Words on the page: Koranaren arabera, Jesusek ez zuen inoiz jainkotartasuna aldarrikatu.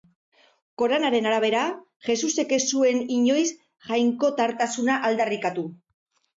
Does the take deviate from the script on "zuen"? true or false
false